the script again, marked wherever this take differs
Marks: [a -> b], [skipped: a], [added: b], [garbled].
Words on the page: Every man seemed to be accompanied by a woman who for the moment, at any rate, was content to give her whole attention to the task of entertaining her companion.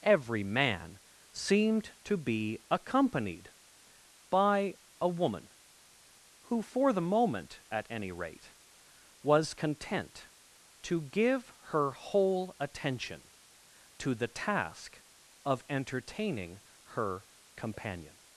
Every man seemed to be accompanied by a woman who for the moment, at any rate, was content to give her whole attention to the task of entertaining her companion.